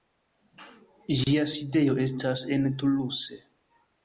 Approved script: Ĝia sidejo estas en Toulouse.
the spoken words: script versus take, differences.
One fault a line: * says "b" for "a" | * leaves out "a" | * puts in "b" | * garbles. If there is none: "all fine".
all fine